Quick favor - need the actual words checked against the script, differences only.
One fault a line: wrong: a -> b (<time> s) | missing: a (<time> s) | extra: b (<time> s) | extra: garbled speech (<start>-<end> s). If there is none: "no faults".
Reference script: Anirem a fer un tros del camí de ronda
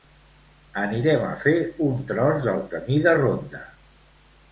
no faults